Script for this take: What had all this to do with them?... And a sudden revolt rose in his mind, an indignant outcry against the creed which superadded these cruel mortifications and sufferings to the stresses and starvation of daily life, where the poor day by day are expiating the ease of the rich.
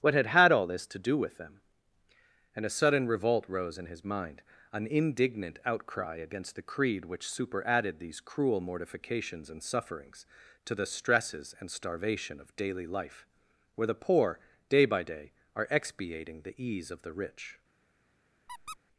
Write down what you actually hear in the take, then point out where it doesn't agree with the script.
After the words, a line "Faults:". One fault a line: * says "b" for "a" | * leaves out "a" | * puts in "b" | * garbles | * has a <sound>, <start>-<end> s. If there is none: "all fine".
What had had all this to do with them?... And a sudden revolt rose in his mind, an indignant outcry against the creed which superadded these cruel mortifications and sufferings to the stresses and starvation of daily life, where the poor day by day are expiating the ease of the rich.
Faults:
* puts in "had"
* has a squeak, 18.5-18.8 s